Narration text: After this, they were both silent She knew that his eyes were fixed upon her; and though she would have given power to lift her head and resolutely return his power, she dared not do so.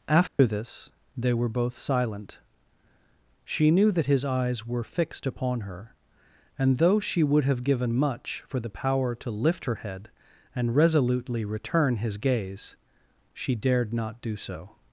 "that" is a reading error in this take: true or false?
false